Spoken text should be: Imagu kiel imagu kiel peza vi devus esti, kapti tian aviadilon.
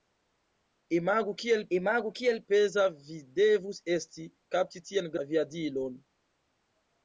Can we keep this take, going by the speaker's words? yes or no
yes